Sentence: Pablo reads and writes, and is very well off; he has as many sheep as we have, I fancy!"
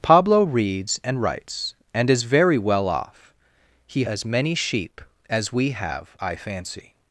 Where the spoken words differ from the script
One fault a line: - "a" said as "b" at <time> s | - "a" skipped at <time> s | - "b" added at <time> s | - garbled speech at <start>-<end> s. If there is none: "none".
- "has" skipped at 4.0 s